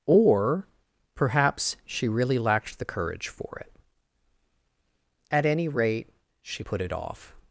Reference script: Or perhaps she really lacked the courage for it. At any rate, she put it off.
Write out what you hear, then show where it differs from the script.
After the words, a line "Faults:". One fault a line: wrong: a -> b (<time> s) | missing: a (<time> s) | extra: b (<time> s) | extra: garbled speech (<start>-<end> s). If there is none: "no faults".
Or perhaps she really lacked the courage for it. At any rate, she put it off.
Faults:
no faults